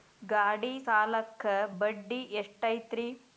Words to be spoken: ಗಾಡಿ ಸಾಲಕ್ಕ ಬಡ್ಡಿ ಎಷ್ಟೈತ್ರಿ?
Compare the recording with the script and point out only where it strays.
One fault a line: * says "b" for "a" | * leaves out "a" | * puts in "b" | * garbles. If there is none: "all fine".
all fine